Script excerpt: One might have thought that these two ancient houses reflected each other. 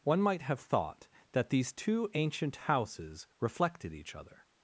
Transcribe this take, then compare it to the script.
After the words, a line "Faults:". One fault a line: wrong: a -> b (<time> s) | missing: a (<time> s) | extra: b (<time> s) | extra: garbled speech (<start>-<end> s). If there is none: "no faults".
One might have thought that these two ancient houses reflected each other.
Faults:
no faults